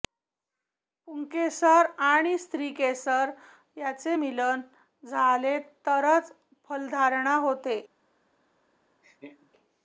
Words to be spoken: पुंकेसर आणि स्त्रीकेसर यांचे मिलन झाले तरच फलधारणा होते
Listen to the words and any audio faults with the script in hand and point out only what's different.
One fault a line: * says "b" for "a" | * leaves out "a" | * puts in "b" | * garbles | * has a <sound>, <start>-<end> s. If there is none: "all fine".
* has a laugh, 9.0-9.5 s